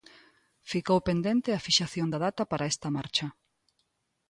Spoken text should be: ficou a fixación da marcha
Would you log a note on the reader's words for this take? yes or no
yes